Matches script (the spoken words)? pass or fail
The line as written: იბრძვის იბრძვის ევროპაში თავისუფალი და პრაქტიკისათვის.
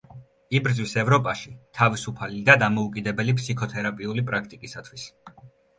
fail